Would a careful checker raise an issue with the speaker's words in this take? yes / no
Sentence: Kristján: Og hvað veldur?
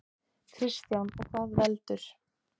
no